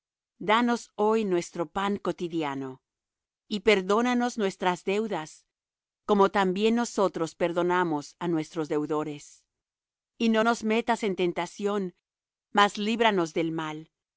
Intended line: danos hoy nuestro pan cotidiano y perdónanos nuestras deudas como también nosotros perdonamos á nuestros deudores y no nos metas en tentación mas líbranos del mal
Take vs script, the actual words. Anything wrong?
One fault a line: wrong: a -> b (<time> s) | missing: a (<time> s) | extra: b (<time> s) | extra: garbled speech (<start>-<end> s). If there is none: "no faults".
no faults